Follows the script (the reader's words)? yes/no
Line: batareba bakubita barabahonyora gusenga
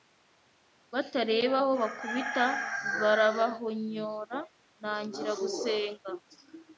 no